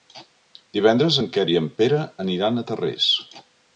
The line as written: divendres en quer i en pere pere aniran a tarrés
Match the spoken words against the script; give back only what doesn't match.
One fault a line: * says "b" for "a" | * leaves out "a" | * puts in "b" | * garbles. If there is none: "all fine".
* leaves out "pere"